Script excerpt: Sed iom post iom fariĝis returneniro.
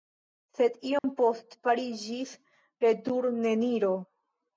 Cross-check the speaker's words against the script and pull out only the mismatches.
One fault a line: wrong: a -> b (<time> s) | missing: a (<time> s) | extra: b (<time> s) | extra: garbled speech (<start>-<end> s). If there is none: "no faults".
missing: iom (1.5 s)